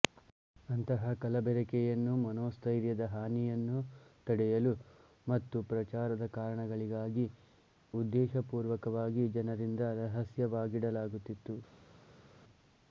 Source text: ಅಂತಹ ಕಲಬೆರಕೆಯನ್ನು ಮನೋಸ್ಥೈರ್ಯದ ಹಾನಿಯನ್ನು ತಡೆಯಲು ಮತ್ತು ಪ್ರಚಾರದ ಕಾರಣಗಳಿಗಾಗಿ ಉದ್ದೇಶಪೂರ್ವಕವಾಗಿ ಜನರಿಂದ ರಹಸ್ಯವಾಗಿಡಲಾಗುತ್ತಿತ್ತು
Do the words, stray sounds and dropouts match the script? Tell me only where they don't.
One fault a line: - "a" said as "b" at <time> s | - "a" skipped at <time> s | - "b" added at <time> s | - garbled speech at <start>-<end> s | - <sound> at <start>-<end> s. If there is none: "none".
none